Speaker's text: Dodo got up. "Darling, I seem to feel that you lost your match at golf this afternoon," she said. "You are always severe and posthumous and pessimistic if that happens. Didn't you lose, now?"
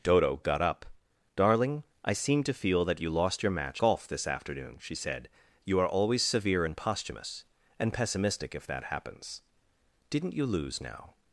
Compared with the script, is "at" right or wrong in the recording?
wrong